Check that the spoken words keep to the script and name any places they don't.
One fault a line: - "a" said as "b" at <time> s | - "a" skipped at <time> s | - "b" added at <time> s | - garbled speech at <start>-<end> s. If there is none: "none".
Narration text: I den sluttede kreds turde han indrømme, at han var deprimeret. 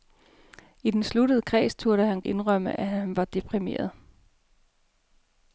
none